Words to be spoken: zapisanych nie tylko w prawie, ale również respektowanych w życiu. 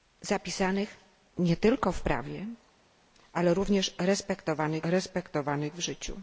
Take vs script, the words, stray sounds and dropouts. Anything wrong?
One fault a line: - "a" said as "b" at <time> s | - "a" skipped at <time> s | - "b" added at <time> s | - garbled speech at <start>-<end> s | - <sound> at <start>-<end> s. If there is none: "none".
- "respektowanych" added at 4.8 s